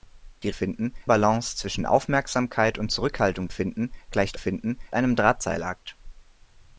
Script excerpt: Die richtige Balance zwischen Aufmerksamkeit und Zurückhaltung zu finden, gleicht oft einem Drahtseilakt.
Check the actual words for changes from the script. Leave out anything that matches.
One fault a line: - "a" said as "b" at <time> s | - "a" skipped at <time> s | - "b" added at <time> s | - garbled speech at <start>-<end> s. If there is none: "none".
- "richtige" said as "finden" at 0.5 s
- "zu" skipped at 3.5 s
- "oft" said as "finden" at 4.4 s